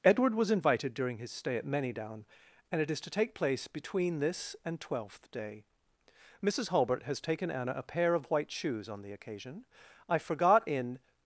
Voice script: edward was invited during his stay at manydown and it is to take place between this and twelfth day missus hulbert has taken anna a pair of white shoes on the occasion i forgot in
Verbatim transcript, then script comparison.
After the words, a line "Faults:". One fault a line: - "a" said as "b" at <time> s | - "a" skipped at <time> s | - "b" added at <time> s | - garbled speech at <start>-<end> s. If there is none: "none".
edward was invited during his stay at manydown and it is to take place between this and twelfth day missus hulbert has taken anna a pair of white shoes on the occasion i forgot in
Faults:
none